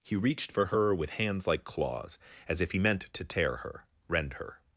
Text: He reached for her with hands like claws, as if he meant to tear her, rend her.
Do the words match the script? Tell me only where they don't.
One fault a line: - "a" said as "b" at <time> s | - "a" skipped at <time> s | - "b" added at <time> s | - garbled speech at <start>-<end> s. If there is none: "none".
none